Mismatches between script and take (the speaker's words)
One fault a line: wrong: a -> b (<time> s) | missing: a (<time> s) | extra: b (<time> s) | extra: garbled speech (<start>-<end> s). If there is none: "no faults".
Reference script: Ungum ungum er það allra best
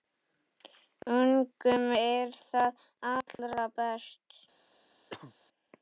missing: ungum (1.9 s)